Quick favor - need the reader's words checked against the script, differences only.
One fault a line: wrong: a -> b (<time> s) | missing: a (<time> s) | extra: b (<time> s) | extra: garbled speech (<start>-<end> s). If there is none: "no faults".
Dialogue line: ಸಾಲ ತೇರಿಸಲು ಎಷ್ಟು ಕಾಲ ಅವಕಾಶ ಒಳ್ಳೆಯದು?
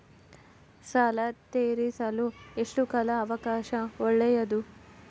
no faults